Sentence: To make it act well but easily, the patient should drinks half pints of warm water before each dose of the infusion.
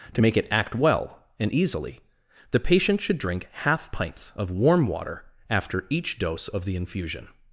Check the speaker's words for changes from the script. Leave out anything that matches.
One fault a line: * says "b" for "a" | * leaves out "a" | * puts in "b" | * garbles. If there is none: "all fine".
* says "and" for "but"
* says "drink" for "drinks"
* says "after" for "before"